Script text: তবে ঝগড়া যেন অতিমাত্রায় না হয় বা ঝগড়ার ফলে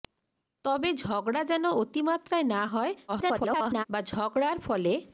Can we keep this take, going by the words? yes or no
no